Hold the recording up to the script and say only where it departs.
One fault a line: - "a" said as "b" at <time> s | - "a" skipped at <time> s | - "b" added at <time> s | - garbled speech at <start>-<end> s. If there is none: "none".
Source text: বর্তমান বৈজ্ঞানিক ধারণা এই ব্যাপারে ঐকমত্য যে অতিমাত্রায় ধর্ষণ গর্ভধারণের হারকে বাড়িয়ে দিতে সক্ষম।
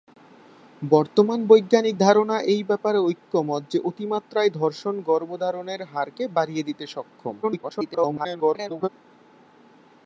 - garbled speech at 7.4-8.9 s